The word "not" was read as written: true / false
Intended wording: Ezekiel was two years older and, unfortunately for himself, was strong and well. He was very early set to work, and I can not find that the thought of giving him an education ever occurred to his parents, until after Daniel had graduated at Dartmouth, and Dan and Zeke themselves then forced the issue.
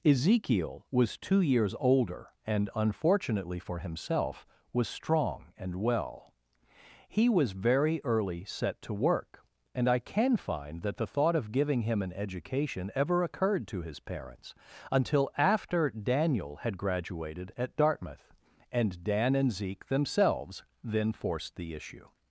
false